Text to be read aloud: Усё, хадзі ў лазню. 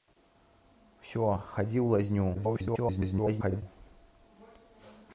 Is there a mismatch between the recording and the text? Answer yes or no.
yes